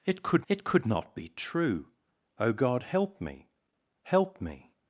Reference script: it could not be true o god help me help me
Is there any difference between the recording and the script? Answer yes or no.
yes